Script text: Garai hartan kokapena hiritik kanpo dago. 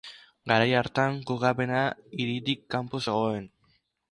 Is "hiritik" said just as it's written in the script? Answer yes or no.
yes